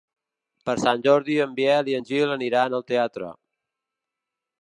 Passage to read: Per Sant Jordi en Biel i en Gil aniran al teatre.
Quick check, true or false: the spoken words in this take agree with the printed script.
true